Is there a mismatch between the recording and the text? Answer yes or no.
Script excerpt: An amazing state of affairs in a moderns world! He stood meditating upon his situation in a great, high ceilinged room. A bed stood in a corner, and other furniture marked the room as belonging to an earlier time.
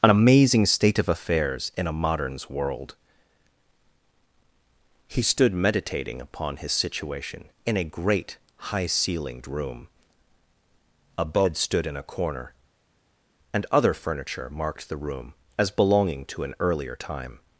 no